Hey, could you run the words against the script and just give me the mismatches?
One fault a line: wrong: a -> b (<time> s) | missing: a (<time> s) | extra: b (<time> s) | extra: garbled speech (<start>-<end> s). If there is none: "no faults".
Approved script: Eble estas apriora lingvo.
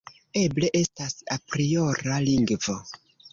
no faults